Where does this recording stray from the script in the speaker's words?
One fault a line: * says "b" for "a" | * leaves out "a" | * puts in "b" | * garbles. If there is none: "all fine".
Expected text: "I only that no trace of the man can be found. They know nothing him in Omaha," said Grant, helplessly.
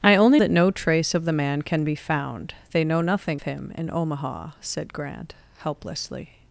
all fine